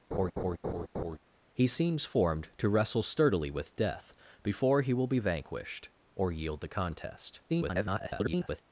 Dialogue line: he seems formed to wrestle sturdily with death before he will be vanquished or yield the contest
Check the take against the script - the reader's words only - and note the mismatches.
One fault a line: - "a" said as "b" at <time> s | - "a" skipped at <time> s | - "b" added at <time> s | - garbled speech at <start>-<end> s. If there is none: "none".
- garbled speech at 7.5-8.6 s